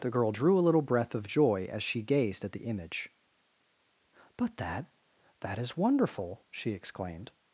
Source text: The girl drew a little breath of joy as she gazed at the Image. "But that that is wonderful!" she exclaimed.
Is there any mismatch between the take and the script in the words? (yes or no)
no